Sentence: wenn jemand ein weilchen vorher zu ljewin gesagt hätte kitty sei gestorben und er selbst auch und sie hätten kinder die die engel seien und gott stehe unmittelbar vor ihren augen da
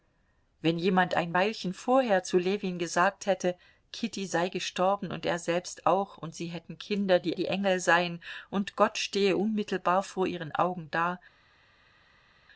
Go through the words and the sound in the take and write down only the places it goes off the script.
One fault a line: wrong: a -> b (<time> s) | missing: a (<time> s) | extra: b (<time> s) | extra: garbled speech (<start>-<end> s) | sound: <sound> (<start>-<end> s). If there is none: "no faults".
no faults